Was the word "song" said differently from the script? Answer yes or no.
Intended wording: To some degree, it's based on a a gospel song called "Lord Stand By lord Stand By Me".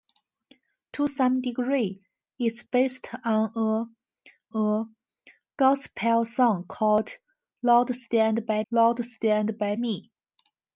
no